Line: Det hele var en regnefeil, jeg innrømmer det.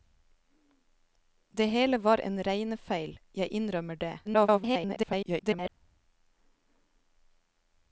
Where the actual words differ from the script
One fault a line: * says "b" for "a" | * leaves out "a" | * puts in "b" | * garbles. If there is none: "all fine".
* garbles